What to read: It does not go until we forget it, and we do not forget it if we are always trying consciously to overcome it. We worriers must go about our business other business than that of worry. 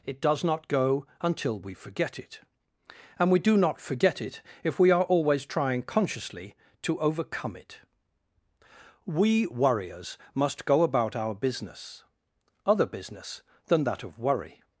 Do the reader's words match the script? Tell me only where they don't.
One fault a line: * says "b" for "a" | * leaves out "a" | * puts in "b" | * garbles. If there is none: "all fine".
all fine